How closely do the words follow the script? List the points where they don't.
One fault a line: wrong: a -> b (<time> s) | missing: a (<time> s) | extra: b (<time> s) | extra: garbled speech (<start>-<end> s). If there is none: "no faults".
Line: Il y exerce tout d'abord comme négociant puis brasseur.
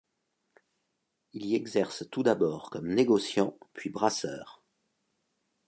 no faults